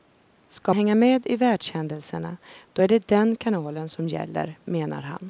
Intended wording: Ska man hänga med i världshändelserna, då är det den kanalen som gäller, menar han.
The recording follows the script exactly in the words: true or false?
false